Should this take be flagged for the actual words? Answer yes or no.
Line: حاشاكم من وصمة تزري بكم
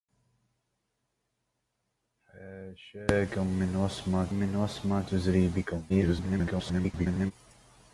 yes